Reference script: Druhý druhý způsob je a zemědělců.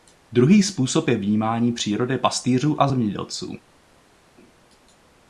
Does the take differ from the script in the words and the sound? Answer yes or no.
yes